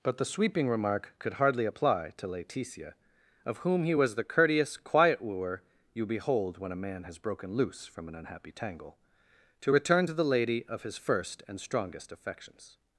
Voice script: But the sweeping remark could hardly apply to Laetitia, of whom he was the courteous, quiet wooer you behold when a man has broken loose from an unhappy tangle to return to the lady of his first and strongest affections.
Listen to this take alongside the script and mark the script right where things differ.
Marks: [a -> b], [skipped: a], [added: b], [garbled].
But the sweeping remark could hardly apply to Laetitia, of whom he was the courteous, quiet wooer you behold when a man has broken loose from an unhappy tangle to return to the lady of his first and strongest affections.